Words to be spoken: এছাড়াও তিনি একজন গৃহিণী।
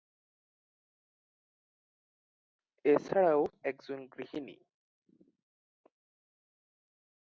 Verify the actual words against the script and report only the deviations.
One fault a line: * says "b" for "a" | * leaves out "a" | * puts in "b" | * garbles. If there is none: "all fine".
* leaves out "তিনি"